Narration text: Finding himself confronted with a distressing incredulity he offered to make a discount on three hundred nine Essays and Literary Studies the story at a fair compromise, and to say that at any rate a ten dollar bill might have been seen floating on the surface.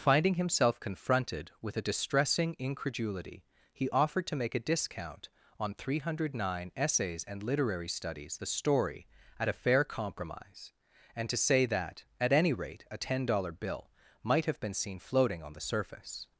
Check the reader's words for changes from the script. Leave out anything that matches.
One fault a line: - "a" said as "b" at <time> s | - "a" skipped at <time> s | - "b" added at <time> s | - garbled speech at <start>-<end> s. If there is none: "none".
none